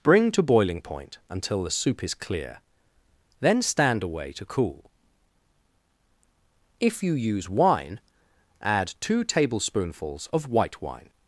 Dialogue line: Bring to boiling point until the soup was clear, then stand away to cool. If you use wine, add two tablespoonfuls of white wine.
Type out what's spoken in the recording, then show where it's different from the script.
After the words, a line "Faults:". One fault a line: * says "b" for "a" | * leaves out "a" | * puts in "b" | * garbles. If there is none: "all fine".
Bring to boiling point until the soup is clear, then stand away to cool. If you use wine, add two tablespoonfuls of white wine.
Faults:
* says "is" for "was"